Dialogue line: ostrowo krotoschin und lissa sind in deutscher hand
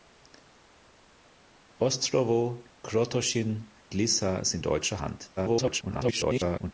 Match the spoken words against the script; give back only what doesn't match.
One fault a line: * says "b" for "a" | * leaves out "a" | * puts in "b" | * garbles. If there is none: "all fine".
* leaves out "und"
* leaves out "in"
* garbles